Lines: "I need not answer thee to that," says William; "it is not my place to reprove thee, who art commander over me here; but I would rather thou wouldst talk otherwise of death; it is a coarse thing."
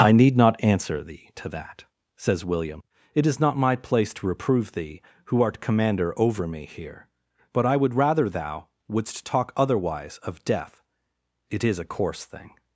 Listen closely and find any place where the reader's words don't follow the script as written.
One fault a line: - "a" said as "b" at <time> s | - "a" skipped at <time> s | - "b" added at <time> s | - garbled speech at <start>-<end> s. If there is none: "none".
none